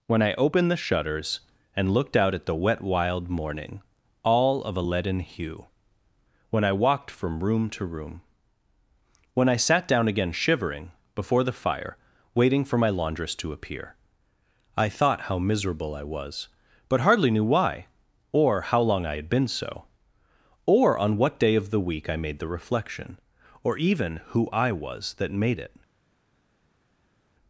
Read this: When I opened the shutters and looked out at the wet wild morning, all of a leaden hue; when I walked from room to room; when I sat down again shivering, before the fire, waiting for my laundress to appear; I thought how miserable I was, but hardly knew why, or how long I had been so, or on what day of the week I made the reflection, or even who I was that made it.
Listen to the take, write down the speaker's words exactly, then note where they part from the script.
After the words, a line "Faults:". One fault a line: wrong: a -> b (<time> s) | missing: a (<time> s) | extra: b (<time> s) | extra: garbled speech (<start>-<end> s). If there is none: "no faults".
When I opened the shutters and looked out at the wet wild morning, all of a leaden hue; when I walked from room to room; when I sat down again shivering, before the fire, waiting for my laundress to appear; I thought how miserable I was, but hardly knew why, or how long I had been so, or on what day of the week I made the reflection, or even who I was that made it.
Faults:
no faults